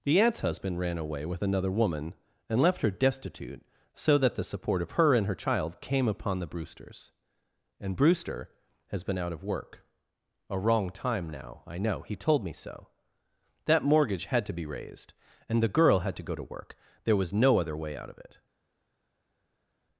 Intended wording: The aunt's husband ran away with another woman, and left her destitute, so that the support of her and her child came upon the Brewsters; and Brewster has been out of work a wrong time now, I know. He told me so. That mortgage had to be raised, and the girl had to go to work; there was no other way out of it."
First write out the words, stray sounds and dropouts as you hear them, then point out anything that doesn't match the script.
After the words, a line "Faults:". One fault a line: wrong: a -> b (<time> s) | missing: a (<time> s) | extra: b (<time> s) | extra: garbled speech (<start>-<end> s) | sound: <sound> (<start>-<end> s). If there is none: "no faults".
The aunt's husband ran away with another woman, and left her destitute, so that the support of her and her child came upon the Brewsters; and Brewster has been out of work a wrong time now, I know. He told me so. That mortgage had to be raised, and the girl had to go to work; there was no other way out of it."
Faults:
no faults